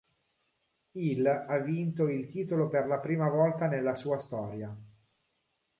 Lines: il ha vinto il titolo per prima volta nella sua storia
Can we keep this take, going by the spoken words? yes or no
no